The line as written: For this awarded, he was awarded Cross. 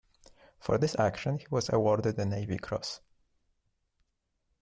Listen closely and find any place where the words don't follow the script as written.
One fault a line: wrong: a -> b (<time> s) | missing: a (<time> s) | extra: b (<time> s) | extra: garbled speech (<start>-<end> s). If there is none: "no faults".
wrong: awarded -> action (1.0 s)
extra: the Navy (2.1 s)